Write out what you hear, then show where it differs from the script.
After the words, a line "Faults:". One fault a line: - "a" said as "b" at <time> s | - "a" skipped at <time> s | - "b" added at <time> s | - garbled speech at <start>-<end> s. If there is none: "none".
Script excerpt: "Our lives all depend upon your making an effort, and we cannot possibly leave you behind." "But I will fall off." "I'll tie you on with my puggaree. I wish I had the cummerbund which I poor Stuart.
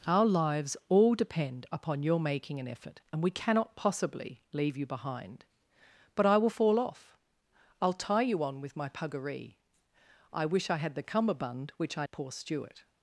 "Our lives all depend upon your making an effort, and we cannot possibly leave you behind." "But I will fall off." "I'll tie you on with my puggaree. I wish I had the cummerbund which I poor Stuart.
Faults:
none